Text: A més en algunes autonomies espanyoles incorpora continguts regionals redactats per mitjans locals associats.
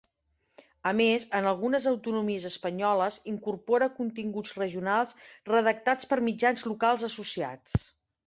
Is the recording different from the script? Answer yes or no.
no